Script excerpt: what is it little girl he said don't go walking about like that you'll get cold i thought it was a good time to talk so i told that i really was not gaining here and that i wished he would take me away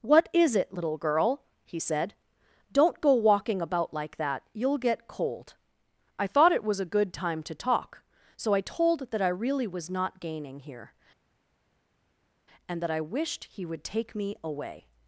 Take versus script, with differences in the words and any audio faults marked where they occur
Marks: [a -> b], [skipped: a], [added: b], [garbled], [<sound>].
what is it little girl he said don't go walking about like that you'll get cold i thought it was a good time to talk so i told that i really was not gaining here and that i wished he would take me away